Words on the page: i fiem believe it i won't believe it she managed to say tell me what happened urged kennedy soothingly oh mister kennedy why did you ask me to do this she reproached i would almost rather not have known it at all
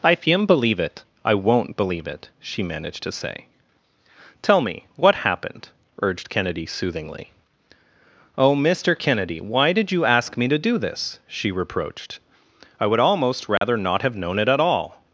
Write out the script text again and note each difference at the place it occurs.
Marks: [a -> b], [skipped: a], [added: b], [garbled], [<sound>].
i fiem believe it i won't believe it she managed to say tell me what happened urged kennedy soothingly oh mister kennedy why did you ask me to do this she reproached i would almost rather [dropout] not have known it at all